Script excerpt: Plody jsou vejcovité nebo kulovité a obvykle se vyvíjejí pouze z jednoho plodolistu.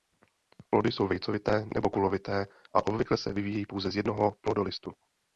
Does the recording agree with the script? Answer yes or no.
yes